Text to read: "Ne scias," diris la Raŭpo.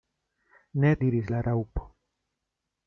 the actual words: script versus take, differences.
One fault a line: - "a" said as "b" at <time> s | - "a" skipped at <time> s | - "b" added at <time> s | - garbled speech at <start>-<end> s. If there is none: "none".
- "scias" skipped at 0.9 s